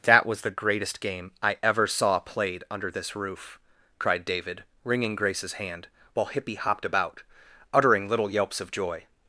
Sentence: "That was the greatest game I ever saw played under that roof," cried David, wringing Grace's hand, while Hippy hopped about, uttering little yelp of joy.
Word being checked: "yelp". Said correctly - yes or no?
no